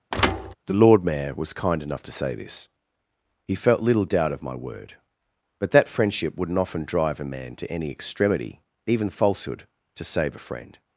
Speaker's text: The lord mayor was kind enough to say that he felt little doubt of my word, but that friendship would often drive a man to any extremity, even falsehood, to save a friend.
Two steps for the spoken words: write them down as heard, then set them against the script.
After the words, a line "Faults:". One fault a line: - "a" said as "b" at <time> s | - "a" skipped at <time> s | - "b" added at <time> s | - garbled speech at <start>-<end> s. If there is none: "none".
The lord mayor was kind enough to say this he felt little doubt of my word, but that friendship wouldn't often drive a man to any extremity, even falsehood, to save a friend.
Faults:
- "that" said as "this" at 2.3 s
- "would" said as "wouldn't" at 6.4 s